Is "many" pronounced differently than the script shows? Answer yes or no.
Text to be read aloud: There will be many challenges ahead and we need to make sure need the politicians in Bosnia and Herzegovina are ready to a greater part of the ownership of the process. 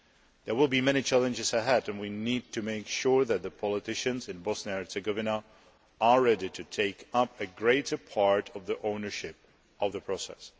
no